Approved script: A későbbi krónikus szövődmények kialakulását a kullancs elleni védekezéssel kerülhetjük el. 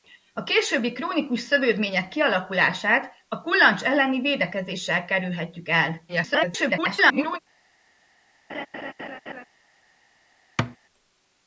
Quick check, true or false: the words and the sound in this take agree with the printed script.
false